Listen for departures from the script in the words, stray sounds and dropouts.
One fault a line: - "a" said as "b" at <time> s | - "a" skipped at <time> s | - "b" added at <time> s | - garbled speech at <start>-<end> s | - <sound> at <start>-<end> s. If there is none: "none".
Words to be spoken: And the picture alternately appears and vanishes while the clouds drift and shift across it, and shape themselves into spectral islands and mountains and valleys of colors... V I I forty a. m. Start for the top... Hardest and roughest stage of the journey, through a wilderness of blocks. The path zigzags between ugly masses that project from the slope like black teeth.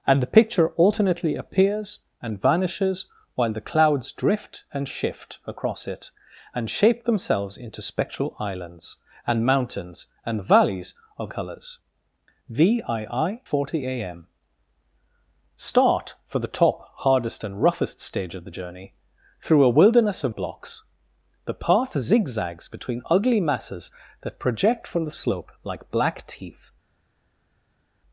none